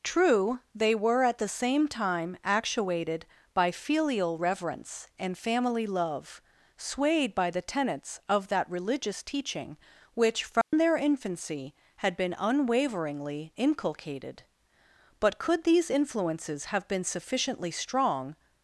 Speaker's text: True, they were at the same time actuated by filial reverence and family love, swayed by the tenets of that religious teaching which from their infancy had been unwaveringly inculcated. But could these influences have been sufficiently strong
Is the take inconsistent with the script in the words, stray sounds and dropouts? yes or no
yes